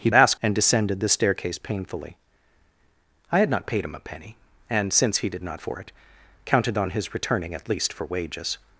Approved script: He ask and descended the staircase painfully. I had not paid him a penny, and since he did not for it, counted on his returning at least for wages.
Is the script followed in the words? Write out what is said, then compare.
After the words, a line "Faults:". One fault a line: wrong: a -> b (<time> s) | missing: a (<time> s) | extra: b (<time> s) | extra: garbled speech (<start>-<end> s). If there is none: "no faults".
He ask and descended the staircase painfully. I had not paid him a penny, and since he did not for it, counted on his returning at least for wages.
Faults:
no faults